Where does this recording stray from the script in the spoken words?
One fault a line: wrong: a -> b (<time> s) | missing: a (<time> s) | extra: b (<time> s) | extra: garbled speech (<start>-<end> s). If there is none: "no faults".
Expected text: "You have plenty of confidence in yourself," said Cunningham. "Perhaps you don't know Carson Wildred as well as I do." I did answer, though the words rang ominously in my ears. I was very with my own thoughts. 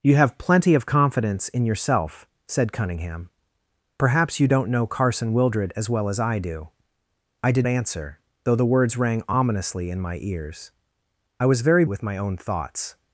no faults